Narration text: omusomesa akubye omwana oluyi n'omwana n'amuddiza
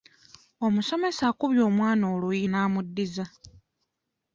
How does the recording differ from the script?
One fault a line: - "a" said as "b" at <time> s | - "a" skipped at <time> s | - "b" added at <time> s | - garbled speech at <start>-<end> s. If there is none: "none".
- "n'omwana" skipped at 2.5 s